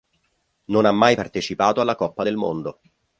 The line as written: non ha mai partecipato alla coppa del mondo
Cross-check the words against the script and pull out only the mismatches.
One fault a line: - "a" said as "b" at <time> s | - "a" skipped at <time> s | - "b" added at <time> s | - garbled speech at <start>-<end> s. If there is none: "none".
none